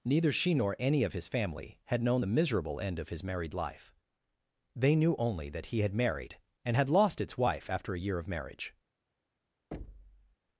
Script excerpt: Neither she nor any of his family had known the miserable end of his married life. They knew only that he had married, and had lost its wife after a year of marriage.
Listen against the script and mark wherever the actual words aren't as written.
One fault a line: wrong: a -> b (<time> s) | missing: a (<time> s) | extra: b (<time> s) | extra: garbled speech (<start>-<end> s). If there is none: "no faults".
no faults